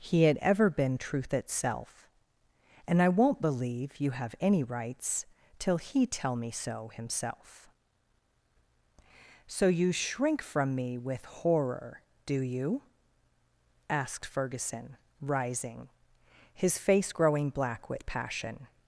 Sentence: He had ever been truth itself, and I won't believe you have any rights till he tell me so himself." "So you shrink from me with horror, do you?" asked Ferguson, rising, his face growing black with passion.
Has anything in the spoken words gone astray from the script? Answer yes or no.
no